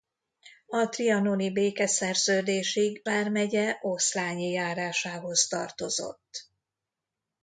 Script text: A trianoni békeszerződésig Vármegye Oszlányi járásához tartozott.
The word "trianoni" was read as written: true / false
true